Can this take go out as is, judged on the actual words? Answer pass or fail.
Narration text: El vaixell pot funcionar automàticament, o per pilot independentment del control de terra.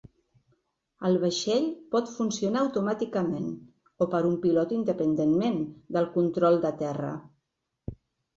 fail